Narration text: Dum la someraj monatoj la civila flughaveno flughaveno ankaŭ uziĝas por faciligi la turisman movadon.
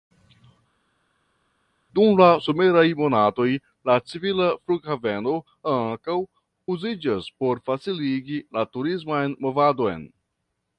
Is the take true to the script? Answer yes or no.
no